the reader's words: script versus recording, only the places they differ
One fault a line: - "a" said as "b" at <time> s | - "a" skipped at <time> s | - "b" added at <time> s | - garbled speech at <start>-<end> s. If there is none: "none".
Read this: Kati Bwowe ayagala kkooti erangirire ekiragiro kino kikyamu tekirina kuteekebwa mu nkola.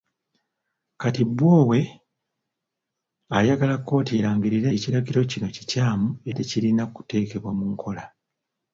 none